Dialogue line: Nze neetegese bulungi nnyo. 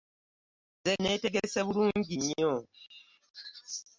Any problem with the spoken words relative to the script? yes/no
no